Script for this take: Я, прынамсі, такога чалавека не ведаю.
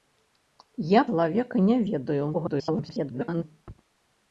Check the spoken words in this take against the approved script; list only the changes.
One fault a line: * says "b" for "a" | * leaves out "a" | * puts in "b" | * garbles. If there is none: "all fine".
* leaves out "прынамсі такога"
* garbles